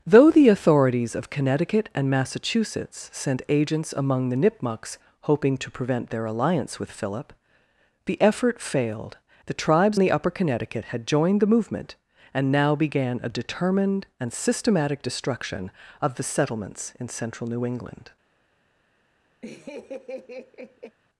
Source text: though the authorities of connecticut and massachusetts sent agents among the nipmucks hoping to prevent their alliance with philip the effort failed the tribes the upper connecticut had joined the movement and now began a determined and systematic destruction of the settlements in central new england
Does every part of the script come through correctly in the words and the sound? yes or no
no